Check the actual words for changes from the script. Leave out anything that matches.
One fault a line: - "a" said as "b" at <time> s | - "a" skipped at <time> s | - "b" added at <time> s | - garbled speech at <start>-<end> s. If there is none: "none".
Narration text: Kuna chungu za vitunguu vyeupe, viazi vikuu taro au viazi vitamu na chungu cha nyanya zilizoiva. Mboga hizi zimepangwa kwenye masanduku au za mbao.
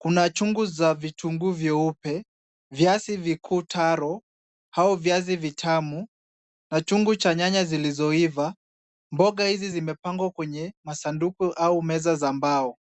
- "meza" added at 11.8 s